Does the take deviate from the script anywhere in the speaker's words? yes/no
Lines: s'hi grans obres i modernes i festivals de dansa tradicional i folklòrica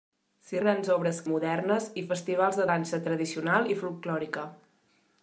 no